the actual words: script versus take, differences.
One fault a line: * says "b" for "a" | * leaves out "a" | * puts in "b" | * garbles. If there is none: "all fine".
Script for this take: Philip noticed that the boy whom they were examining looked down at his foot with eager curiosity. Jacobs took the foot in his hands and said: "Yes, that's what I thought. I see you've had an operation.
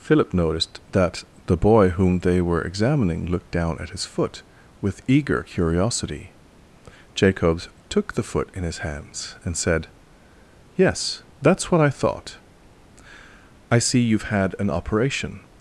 all fine